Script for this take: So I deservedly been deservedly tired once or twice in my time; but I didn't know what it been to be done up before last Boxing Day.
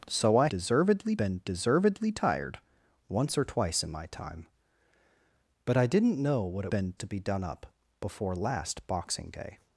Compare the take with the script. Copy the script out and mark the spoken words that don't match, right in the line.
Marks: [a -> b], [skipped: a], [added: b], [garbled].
So I deservedly been deservedly tired once or twice in my time; but I didn't know what it been to be done up before last Boxing Day.